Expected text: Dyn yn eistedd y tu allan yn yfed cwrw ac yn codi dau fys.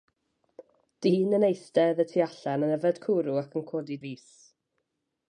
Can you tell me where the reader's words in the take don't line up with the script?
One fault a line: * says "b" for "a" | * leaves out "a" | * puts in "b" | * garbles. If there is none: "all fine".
* leaves out "dau"